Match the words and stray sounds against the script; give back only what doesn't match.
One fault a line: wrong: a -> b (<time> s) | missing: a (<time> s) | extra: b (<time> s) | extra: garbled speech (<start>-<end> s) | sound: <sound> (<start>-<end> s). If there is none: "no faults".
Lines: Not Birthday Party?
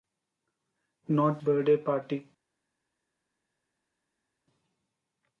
no faults